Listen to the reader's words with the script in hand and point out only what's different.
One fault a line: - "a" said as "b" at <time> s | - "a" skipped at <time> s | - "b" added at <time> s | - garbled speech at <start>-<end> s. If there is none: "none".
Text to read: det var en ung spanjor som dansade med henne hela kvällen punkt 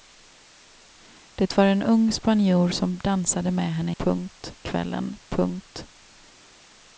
- "hela" said as "punkt" at 4.0 s